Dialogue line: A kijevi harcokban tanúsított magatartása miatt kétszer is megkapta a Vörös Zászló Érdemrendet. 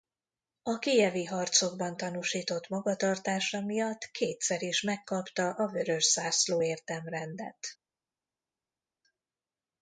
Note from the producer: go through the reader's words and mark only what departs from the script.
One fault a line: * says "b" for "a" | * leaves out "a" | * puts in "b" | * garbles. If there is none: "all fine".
all fine